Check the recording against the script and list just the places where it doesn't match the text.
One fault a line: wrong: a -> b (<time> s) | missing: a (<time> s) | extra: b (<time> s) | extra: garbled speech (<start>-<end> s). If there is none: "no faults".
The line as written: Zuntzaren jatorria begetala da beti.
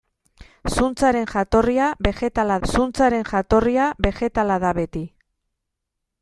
extra: zuntzaren jatorria begetala (2.7 s)